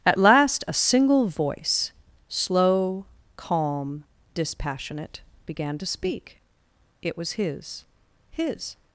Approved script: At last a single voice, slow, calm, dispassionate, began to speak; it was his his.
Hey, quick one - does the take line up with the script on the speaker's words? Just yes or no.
yes